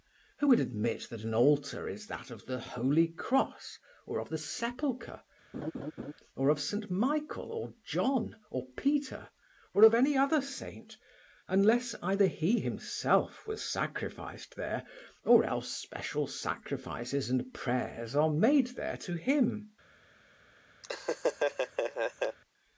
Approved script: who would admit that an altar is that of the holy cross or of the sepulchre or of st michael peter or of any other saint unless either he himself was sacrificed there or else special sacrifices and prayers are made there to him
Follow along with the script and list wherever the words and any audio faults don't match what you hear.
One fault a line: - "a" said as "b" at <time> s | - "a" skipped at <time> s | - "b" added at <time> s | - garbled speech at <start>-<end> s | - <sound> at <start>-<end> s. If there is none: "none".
- laugh at 5.5-6.1 s
- "or john or" added at 7.5 s
- laugh at 20.8-22.4 s